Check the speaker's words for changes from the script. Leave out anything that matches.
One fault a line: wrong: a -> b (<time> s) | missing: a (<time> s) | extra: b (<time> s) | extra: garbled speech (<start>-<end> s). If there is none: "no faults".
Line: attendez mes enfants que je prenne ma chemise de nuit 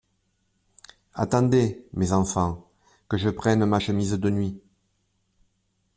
no faults